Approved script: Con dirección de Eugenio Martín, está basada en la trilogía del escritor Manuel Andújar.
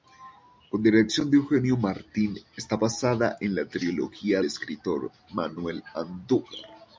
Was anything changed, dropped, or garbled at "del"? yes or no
yes